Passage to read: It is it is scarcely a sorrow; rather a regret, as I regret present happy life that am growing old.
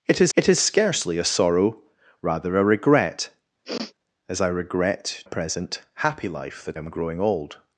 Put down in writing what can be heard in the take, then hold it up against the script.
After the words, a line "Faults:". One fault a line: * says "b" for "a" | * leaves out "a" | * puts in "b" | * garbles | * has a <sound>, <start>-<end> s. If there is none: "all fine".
It is it is scarcely a sorrow; rather a regret, as I regret present happy life that am growing old.
Faults:
* has a sniff, 3.6-3.9 s